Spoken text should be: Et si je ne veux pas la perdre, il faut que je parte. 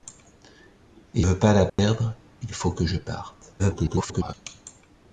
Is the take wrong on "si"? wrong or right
wrong